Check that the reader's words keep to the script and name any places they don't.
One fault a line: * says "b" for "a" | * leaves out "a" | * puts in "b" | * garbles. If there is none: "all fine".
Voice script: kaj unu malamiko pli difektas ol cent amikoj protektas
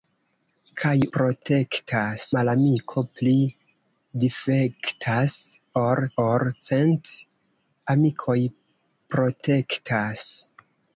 * says "protektas" for "unu"
* puts in "ol"